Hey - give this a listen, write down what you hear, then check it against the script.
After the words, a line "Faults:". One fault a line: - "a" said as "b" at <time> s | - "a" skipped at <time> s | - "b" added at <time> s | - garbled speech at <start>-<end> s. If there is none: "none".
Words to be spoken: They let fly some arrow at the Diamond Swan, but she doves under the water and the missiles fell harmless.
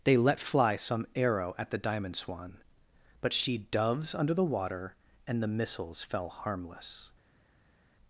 They let fly some arrow at the Diamond Swan, but she doves under the water and the missiles fell harmless.
Faults:
none